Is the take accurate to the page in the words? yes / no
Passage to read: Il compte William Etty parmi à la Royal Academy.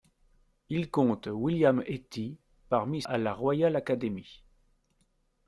yes